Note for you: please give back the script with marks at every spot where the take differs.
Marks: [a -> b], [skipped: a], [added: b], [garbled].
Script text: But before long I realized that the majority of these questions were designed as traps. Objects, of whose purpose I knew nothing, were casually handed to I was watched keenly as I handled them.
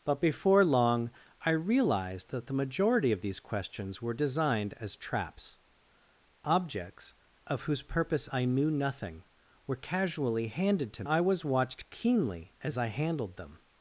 But before long I realized that the majority of these questions were designed as traps. Objects, of whose purpose I knew nothing, were casually handed to I was watched keenly as I handled them.